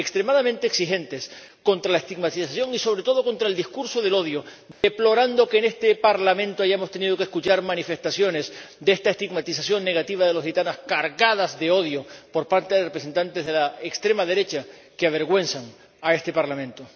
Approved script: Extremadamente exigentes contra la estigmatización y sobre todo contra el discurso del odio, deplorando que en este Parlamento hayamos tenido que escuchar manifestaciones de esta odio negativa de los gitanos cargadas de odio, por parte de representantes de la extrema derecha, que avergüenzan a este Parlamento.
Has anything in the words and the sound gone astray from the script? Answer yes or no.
yes